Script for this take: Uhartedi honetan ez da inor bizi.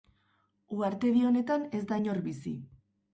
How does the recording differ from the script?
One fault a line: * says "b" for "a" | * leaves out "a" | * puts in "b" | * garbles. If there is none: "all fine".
all fine